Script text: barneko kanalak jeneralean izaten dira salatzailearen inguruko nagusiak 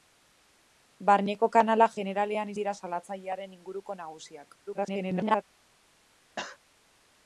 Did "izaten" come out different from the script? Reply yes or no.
yes